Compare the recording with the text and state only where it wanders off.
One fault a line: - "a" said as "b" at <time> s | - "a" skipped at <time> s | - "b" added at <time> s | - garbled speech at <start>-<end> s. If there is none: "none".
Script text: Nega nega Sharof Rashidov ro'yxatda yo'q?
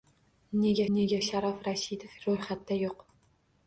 none